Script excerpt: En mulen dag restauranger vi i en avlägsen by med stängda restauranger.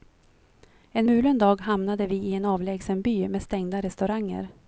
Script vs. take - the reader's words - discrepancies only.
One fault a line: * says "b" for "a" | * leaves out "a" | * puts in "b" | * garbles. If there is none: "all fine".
* says "hamnade" for "restauranger"